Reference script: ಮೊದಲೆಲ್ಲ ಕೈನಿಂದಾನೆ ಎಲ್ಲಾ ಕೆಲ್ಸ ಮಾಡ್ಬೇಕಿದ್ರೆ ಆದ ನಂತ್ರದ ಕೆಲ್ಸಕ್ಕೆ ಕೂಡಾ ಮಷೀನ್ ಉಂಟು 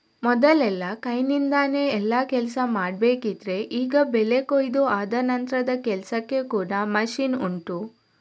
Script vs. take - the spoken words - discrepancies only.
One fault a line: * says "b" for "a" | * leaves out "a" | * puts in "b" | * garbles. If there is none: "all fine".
* puts in "ಈಗ ಬೆಳೆ ಕೊಯಿದು"